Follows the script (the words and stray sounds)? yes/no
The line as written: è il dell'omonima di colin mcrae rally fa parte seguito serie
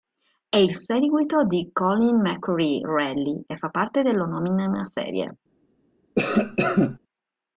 no